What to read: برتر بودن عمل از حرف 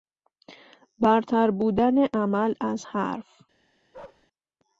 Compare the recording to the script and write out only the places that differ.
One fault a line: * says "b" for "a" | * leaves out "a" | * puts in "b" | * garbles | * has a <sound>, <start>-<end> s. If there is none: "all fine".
* has a bark, 3.9-4.3 s